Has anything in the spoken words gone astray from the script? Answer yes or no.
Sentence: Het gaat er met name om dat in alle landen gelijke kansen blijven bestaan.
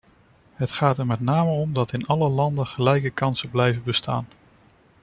no